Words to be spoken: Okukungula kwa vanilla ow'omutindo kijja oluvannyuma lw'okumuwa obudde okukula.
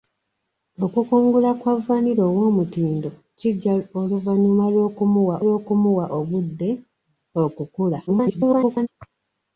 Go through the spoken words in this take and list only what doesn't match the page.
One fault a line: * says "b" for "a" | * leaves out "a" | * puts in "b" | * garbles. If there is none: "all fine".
* puts in "lw'okumuwa"
* garbles